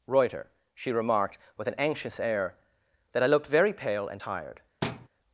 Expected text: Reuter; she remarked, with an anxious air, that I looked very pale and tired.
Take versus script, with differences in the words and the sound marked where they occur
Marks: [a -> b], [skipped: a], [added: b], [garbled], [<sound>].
Reuter; she remarked, with an anxious air, that I looked very pale and tired. [thud]